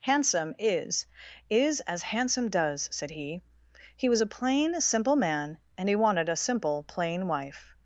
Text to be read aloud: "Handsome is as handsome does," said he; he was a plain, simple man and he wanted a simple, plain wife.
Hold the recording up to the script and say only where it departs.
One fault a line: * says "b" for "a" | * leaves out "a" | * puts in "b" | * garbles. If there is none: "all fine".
* puts in "is"